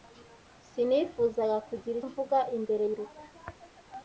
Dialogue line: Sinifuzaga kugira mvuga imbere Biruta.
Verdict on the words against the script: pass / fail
pass